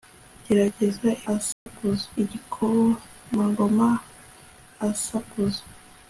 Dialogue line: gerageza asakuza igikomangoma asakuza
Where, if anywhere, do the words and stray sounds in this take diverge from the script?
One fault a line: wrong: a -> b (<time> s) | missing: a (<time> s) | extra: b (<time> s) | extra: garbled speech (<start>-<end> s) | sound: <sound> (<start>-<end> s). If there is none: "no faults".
sound: dropout (1.5-1.7 s)